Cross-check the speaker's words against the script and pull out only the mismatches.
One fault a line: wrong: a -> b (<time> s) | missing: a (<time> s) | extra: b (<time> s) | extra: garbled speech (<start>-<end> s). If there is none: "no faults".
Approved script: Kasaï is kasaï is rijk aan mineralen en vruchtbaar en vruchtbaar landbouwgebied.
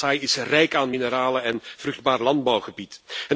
missing: kasaï is (0.3 s)
missing: en vruchtbaar (2.2 s)